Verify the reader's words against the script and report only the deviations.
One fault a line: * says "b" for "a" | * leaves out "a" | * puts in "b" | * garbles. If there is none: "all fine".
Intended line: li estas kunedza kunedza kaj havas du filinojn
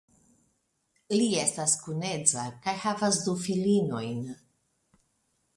* leaves out "kunedza"